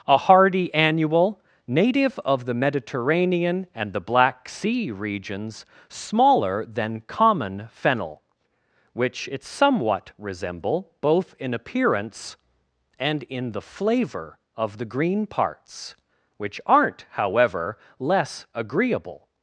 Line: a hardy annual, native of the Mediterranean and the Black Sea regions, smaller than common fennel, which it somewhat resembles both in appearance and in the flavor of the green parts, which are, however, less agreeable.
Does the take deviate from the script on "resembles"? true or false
true